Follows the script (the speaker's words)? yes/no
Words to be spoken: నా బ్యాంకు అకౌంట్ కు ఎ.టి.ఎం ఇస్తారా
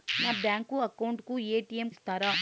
yes